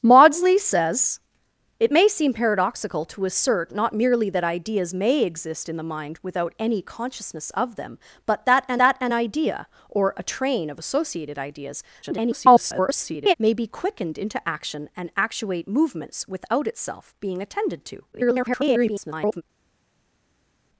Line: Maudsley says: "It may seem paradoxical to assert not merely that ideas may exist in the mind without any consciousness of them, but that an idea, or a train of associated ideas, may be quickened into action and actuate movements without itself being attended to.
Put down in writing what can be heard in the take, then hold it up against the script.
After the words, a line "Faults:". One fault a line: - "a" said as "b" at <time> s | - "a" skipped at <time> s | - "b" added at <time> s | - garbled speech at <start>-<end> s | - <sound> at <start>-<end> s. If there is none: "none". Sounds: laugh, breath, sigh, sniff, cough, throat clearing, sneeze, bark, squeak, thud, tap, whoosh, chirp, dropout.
Maudsley says: "It may seem paradoxical to assert not merely that ideas may exist in the mind without any consciousness of them, but that an that an idea, or a train of associated ideas, [garbled] may be quickened into action and actuate movements without itself being attended to. [garbled]
Faults:
- "that an" added at 8.8 s
- garbled speech at 12.0-13.3 s
- garbled speech at 18.1-19.4 s